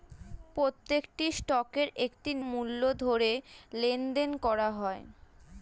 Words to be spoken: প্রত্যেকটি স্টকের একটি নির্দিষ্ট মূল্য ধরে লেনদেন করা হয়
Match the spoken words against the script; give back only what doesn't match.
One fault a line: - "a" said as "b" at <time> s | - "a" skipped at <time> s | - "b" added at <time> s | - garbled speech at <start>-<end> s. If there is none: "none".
- "নির্দিষ্ট" skipped at 2.3 s